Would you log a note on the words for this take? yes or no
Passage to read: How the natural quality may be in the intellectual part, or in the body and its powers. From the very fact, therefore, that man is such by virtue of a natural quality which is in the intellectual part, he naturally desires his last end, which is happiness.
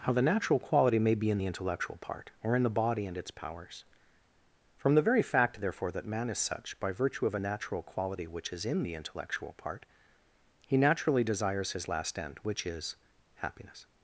no